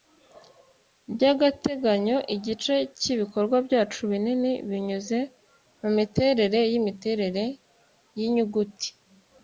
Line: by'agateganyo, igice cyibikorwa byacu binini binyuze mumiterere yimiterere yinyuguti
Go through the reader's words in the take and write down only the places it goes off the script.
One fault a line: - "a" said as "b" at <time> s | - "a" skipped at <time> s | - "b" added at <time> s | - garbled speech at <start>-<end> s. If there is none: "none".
none